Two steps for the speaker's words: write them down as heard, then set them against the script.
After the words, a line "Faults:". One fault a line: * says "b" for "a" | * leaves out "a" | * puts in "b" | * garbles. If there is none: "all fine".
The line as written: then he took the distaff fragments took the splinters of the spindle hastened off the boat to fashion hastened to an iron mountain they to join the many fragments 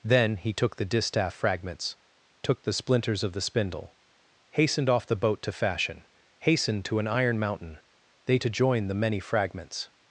then he took the distaff fragments took the splinters of the spindle hastened off the boat to fashion hastened to an iron mountain they to join the many fragments
Faults:
all fine